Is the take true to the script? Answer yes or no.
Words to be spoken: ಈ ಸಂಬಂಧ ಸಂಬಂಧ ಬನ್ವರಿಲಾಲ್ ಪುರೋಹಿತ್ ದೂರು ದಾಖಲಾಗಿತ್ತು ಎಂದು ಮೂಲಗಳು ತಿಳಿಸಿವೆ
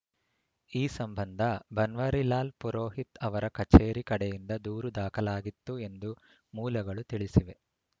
no